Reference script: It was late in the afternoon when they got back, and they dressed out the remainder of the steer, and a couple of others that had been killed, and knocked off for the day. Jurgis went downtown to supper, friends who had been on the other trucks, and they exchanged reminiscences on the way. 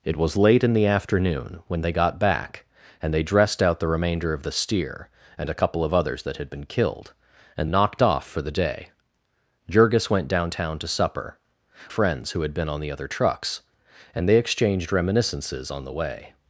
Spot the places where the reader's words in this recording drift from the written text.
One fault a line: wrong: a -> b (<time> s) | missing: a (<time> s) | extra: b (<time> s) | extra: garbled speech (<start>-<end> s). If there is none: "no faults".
no faults